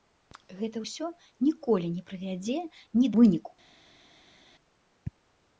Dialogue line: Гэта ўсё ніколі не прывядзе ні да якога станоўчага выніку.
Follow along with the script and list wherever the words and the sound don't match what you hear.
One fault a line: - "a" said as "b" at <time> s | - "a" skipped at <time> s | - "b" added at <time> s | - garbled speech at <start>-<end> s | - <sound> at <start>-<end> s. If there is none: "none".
- "да якога станоўчага" skipped at 3.1 s